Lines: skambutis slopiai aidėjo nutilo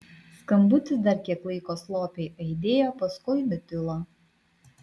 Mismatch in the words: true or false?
true